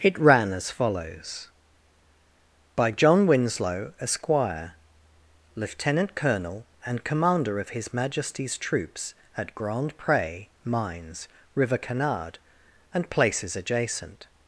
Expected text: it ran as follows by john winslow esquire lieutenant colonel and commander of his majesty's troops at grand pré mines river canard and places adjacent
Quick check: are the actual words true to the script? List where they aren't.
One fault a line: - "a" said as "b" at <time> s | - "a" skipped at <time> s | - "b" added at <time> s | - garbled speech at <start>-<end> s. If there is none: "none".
none